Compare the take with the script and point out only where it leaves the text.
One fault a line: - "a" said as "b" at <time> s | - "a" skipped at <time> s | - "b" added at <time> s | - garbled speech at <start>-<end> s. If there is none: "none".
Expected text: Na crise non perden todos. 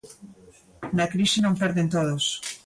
none